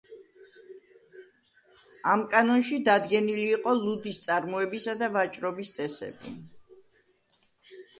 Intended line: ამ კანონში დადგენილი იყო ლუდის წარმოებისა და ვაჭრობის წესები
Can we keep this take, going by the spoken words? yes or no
yes